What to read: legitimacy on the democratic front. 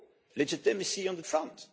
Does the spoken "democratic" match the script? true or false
false